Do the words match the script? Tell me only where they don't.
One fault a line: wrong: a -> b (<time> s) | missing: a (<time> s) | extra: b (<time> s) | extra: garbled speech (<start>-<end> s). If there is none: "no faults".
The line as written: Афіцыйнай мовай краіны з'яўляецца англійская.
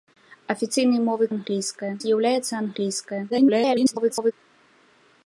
wrong: краіны -> англійская (1.3 s)
extra: garbled speech (3.3-4.3 s)